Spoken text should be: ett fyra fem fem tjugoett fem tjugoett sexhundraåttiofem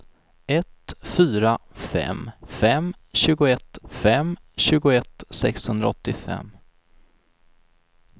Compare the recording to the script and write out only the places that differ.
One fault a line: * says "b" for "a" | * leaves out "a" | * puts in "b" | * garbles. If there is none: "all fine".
all fine